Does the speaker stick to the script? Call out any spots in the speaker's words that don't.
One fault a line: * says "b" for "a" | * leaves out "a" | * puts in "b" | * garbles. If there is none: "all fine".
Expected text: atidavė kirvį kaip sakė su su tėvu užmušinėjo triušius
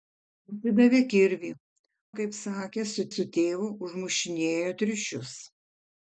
all fine